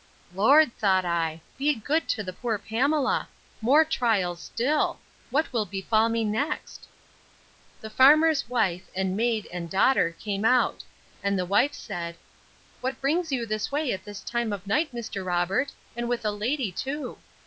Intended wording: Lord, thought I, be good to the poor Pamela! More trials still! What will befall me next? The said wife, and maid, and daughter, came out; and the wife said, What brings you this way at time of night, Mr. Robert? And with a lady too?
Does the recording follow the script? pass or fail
fail